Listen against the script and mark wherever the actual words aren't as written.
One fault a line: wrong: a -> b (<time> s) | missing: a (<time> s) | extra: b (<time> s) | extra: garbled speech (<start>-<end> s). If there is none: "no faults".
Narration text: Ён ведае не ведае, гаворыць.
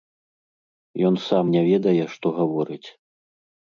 wrong: ведае -> сам (1.3 s)
extra: што (2.2 s)